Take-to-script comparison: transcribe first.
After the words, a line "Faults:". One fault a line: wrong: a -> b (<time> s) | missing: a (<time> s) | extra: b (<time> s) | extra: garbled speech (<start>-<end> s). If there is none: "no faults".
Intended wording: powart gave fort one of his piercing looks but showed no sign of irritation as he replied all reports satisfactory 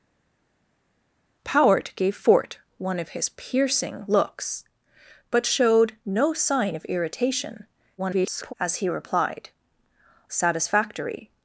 powart gave fort one of his piercing looks but showed no sign of irritation [garbled] as he replied satisfactory
Faults:
extra: garbled speech (8.0-8.5 s)
missing: all reports (9.5 s)